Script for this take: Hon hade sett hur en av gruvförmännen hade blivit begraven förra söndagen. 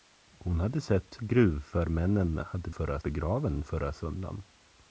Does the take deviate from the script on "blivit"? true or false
true